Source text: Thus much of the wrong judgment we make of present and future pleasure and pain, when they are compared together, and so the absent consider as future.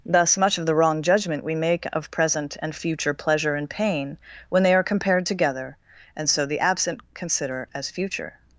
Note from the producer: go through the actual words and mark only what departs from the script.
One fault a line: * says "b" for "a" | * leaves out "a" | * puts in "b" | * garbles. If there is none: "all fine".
all fine